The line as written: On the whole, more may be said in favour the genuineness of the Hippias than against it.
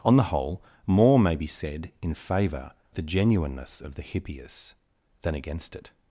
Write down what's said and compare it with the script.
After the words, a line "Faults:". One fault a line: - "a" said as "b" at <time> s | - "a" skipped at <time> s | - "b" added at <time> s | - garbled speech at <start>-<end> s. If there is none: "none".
On the whole, more may be said in favour the genuineness of the Hippias than against it.
Faults:
none